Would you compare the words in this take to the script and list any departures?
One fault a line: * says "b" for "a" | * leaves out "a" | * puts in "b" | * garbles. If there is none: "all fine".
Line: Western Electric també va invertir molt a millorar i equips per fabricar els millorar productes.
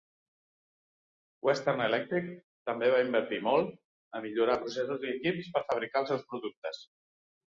* puts in "processos"
* says "seus" for "millorar"